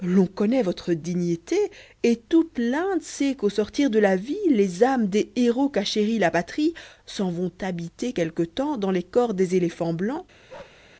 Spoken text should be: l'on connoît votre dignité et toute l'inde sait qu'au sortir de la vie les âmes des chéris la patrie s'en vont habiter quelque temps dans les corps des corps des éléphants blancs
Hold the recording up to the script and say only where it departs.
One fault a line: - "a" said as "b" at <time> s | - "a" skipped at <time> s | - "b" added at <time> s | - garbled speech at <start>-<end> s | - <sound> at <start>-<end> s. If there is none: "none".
- "héros qu'a" added at 5.3 s
- "corps des" skipped at 9.6 s
- bark at 10.5-10.8 s